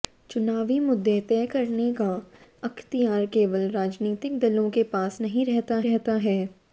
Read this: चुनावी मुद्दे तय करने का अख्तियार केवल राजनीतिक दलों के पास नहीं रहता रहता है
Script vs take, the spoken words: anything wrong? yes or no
no